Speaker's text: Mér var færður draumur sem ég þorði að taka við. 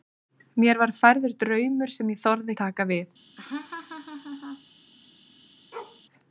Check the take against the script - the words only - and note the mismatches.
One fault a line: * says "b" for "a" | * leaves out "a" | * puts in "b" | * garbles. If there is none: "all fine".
all fine